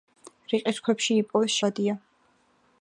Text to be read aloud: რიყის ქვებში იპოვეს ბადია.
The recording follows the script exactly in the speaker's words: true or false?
true